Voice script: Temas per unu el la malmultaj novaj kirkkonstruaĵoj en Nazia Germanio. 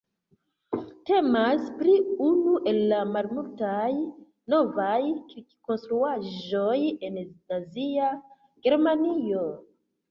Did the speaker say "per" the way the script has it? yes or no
no